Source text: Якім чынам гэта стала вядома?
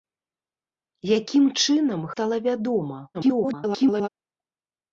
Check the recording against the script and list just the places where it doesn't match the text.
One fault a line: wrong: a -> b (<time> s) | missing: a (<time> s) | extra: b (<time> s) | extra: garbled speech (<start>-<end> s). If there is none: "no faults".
missing: гэта (2.0 s)
extra: garbled speech (3.1-4.1 s)